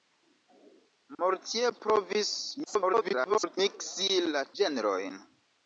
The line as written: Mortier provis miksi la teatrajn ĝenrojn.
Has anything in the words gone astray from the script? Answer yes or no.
yes